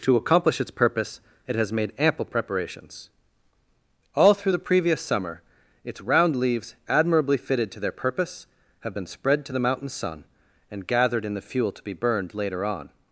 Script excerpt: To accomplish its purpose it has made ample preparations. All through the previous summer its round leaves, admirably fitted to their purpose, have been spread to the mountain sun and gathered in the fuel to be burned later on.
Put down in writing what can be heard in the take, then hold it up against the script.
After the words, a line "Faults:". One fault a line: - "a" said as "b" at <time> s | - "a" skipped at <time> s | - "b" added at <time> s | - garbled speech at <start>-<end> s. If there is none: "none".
To accomplish its purpose it has made ample preparations. All through the previous summer its round leaves, admirably fitted to their purpose, have been spread to the mountain sun and gathered in the fuel to be burned later on.
Faults:
none